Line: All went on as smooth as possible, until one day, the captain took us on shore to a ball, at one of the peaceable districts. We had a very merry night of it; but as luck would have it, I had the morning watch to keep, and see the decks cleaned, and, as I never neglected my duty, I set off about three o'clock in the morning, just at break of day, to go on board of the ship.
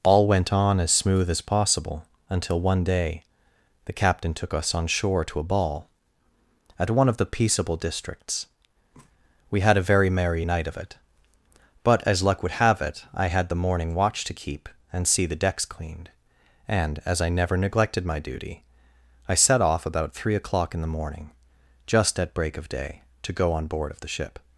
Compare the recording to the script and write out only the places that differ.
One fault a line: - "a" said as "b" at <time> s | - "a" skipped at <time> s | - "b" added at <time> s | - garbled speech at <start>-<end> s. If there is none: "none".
none